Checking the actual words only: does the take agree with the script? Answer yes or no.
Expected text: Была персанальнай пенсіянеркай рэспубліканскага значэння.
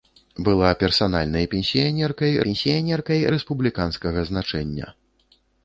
no